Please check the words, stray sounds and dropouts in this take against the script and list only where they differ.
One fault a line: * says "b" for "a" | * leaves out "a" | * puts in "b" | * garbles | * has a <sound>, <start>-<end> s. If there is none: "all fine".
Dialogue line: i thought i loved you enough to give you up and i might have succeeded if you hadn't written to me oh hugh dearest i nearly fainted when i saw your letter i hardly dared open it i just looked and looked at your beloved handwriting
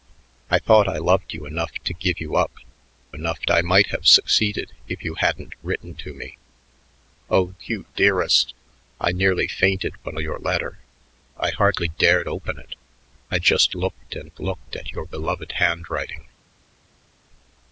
* says "enough" for "and"
* leaves out "i saw"